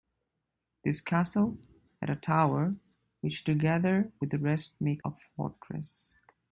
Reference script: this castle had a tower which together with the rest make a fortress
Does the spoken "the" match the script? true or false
true